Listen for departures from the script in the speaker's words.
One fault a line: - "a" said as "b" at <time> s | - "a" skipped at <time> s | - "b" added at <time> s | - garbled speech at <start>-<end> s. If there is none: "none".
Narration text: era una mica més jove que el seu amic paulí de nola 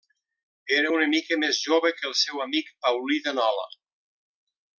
none